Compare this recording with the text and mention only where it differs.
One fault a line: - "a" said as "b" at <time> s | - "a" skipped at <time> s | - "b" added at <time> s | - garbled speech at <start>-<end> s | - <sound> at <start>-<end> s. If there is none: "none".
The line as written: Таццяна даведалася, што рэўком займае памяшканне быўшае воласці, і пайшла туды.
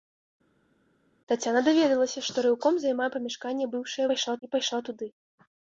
- "воласці" said as "пайшла" at 4.1 s